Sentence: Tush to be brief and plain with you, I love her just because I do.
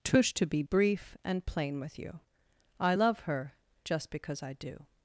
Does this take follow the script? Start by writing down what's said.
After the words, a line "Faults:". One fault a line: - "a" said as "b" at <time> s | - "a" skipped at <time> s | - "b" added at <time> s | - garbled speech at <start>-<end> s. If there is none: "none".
Tush to be brief and plain with you, I love her just because I do.
Faults:
none